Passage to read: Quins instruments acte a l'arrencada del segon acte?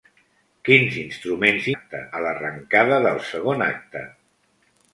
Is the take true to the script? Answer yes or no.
yes